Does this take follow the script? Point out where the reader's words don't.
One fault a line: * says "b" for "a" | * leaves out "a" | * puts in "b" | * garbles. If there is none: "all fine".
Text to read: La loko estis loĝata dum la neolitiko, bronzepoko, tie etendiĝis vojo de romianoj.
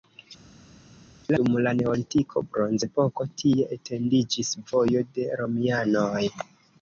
* leaves out "loko estis loĝata"